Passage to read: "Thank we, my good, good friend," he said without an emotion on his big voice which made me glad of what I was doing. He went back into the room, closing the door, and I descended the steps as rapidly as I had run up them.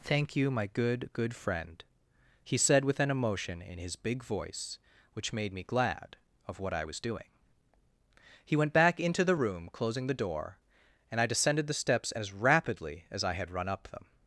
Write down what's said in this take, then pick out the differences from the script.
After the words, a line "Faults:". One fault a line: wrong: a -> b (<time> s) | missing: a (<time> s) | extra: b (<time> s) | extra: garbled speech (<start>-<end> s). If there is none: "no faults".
"Thank you, my good, good friend," he said with an emotion in his big voice which made me glad of what I was doing. He went back into the room, closing the door, and I descended the steps as rapidly as I had run up them.
Faults:
wrong: we -> you (0.3 s)
wrong: without -> with (2.8 s)
wrong: on -> in (3.6 s)